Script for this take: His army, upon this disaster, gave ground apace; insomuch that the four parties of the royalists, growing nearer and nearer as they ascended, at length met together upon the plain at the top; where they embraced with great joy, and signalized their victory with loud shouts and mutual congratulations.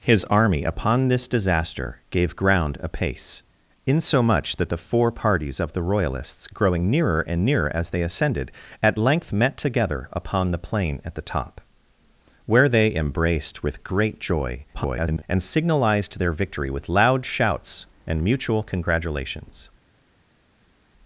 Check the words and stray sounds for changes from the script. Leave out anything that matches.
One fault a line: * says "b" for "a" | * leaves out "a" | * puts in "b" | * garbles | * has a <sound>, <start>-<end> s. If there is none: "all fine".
* garbles